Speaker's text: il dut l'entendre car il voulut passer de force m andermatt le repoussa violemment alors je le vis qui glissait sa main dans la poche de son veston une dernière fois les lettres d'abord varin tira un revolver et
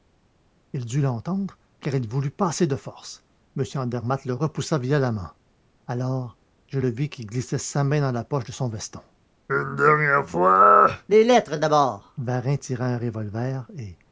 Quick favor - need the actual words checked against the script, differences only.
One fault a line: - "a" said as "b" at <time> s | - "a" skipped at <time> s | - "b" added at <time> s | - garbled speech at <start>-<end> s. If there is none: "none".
none